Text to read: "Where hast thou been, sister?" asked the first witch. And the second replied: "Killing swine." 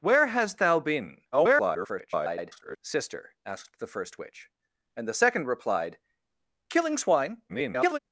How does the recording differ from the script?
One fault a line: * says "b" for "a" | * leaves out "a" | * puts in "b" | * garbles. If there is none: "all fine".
* garbles
* garbles